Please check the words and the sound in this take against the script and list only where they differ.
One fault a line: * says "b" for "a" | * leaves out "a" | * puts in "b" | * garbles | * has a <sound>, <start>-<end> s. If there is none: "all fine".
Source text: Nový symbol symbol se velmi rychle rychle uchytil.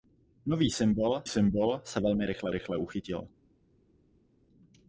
all fine